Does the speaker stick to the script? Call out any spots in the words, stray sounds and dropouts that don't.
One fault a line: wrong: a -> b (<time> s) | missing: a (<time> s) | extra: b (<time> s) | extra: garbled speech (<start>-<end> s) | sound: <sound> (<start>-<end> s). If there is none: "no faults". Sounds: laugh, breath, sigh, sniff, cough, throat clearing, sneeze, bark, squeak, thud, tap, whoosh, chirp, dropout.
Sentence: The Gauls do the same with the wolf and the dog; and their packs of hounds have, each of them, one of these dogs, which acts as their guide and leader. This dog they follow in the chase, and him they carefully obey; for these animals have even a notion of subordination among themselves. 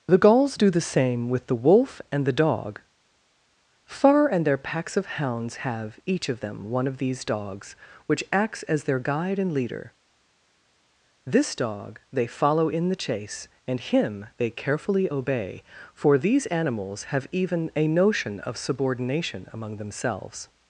extra: far (3.9 s)